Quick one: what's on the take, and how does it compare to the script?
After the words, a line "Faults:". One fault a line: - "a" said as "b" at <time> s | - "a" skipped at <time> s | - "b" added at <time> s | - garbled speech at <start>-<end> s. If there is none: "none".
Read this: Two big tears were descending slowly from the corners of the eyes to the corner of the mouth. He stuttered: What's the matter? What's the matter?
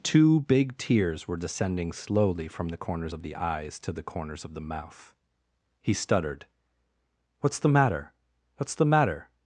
Two big tears were descending slowly from the corners of the eyes to the corners of the mouth. He stuttered: What's the matter? What's the matter?
Faults:
- "corner" said as "corners" at 4.0 s